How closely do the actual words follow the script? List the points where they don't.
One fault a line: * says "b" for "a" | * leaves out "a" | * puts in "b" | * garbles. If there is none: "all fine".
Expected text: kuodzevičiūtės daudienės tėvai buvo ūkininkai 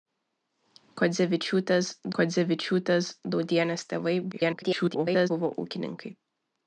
* puts in "kuodzevičiūtės"
* garbles